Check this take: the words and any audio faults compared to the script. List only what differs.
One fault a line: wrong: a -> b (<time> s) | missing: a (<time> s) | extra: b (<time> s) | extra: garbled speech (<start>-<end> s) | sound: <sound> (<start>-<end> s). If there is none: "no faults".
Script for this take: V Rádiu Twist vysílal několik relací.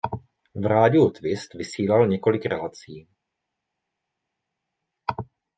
no faults